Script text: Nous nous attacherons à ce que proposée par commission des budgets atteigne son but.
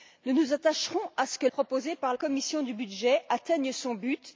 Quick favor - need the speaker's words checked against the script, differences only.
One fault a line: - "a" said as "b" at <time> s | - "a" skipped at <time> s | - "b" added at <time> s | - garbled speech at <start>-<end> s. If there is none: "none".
none